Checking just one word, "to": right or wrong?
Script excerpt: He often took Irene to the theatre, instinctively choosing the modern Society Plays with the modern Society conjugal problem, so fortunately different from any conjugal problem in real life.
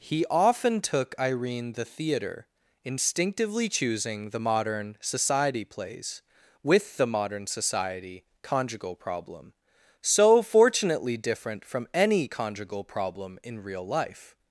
wrong